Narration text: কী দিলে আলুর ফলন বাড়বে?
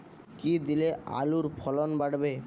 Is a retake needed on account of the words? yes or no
no